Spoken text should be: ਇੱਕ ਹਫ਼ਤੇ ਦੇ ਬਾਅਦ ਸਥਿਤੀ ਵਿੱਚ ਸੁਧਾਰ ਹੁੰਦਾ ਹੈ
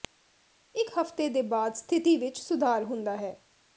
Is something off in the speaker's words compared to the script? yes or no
no